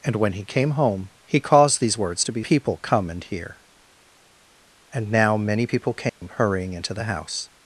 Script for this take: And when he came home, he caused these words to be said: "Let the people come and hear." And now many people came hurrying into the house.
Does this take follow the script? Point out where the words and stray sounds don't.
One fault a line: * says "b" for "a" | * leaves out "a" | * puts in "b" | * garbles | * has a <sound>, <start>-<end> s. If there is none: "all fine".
* leaves out "said Let the"
* has a dropout, 6.1-6.2 s